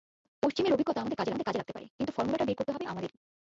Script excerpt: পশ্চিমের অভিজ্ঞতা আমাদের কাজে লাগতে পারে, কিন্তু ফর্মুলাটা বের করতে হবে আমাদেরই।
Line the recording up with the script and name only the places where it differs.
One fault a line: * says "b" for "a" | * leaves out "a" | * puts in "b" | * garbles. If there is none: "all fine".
* puts in "আমাদের কাজে"